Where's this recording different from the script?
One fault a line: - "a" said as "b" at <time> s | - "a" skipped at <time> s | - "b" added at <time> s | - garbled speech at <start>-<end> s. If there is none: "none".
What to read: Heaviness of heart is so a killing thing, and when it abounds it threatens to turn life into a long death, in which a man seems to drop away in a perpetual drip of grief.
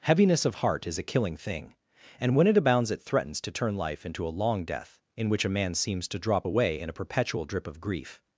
- "so" skipped at 1.0 s